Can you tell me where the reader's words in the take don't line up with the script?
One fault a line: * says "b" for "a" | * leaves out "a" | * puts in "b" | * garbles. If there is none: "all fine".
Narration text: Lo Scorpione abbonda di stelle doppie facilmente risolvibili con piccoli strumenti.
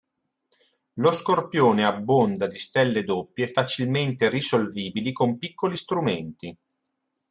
all fine